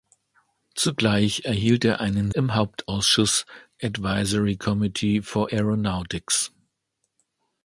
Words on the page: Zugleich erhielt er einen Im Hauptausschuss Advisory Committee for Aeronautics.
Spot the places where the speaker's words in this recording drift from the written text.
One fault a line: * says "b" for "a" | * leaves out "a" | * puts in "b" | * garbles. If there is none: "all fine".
all fine